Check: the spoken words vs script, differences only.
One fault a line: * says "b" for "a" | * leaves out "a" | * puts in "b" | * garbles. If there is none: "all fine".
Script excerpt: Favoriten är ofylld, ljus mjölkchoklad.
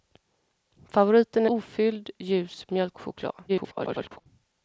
* leaves out "är"
* garbles